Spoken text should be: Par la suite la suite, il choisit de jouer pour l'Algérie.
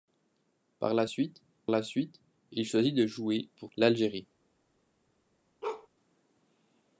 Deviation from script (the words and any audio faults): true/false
true